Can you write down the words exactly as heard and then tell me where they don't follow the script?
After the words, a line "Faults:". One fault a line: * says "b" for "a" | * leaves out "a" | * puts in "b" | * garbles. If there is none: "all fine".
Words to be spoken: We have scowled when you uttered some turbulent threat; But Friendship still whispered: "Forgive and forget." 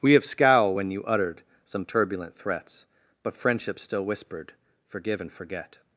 We have scowl when you uttered some turbulent threats; But Friendship still whispered: "Forgive and forget."
Faults:
* says "scowl" for "scowled"
* says "threats" for "threat"